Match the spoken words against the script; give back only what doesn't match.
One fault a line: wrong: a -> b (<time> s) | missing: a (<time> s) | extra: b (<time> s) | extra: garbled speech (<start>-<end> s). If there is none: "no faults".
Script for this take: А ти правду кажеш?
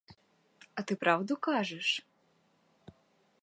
no faults